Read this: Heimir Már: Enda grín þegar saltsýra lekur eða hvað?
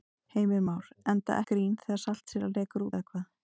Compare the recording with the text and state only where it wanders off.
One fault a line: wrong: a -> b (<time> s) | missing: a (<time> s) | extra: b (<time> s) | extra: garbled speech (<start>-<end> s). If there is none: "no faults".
no faults